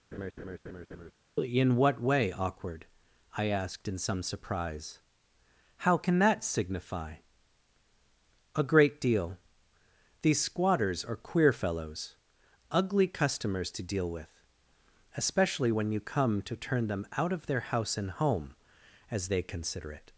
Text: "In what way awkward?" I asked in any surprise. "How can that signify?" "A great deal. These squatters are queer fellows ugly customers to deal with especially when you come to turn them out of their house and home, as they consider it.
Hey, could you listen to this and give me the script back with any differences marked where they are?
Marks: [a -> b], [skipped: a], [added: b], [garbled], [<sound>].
[laugh] "In what way awkward?" I asked in [any -> some] surprise. "How can that signify?" "A great deal. These squatters are queer fellows ugly customers to deal with especially when you come to turn them out of their house and home, as they consider it.